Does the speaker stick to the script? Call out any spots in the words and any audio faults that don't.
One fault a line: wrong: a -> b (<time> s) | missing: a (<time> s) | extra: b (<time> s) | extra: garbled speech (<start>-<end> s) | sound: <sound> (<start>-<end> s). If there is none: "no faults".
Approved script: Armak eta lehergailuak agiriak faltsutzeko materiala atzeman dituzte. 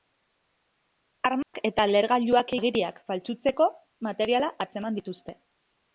sound: dropout (1.4-1.5 s)